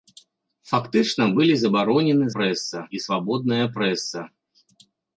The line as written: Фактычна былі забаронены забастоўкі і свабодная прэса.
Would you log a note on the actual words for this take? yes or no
yes